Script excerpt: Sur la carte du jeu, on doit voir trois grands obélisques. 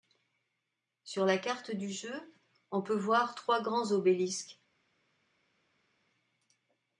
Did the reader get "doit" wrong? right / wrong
wrong